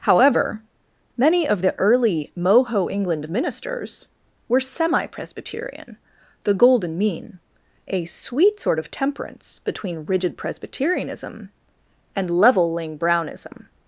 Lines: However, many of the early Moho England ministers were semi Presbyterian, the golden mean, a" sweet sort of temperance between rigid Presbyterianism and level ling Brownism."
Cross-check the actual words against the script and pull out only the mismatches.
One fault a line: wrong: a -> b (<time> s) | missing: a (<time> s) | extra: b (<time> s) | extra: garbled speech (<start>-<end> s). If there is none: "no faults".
no faults